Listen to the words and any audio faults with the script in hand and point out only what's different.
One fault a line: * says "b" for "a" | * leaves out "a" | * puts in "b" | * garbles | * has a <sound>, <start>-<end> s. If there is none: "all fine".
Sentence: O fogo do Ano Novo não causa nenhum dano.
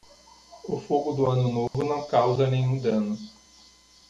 * has a dropout, 1.7-1.7 s